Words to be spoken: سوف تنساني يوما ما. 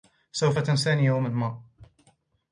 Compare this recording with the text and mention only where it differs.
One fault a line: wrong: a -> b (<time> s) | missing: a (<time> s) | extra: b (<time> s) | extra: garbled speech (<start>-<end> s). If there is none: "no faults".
no faults